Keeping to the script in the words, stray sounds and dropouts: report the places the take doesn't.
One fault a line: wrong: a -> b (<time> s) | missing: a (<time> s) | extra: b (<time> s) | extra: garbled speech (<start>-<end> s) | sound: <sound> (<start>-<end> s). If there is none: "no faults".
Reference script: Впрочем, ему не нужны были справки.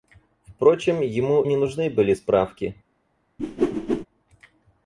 sound: whoosh (3.4-4.1 s)